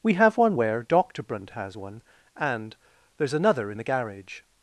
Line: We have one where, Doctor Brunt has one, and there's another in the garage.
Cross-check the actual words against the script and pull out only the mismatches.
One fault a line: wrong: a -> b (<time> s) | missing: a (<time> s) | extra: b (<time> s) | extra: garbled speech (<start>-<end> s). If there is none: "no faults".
no faults